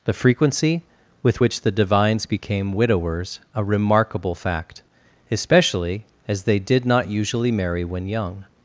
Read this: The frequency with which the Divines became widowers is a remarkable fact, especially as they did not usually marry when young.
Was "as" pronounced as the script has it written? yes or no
yes